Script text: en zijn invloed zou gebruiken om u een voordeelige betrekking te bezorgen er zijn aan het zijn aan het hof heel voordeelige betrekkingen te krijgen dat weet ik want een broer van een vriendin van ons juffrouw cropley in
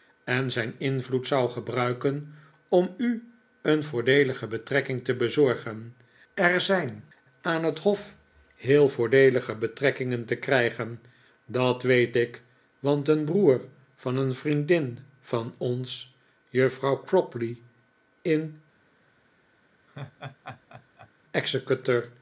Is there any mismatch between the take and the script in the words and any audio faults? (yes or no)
yes